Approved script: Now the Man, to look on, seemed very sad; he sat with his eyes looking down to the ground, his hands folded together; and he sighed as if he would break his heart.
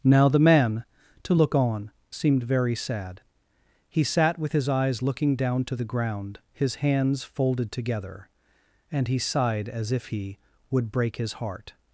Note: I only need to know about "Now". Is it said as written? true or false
true